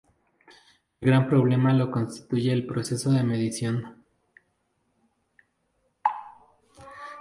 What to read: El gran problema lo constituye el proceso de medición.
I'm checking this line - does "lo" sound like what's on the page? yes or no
yes